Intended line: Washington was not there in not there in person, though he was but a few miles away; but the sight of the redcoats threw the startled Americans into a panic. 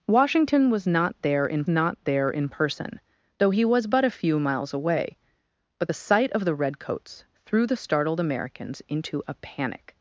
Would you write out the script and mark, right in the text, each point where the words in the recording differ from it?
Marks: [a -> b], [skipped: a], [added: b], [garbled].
Washington was not there in not there in person, though he was but a few miles away; but the sight of the redcoats threw the startled Americans into a panic.